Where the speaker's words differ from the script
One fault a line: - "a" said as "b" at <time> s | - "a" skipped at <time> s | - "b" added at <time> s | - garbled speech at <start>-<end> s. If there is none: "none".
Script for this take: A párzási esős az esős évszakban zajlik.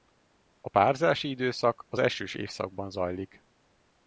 - "esős" said as "időszak" at 1.3 s